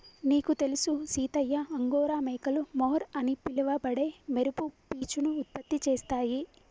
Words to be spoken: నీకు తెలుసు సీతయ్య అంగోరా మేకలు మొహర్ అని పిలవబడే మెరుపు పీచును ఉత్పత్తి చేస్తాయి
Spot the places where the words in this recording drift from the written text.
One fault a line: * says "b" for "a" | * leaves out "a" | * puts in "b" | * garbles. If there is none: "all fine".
all fine